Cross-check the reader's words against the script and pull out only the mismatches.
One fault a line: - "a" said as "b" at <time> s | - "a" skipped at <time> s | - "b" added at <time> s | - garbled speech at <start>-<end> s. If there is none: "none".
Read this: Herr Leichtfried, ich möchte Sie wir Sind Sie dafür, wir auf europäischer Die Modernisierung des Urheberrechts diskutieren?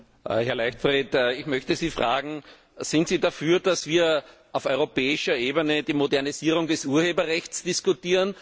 - "wir" said as "fragen" at 1.9 s
- "dass" added at 3.6 s
- "Ebene" added at 5.3 s